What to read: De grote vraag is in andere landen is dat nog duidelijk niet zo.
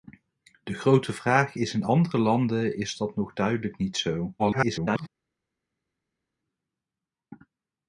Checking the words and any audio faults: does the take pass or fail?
fail